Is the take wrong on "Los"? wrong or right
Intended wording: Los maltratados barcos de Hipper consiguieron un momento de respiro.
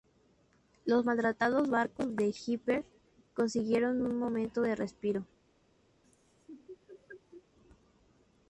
right